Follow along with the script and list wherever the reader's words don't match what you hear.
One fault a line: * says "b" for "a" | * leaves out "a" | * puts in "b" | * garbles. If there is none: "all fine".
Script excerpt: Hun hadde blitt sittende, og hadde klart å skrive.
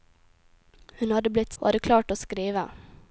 * leaves out "sittende"